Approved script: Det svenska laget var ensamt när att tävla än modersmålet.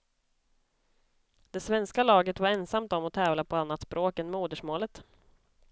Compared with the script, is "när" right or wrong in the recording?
wrong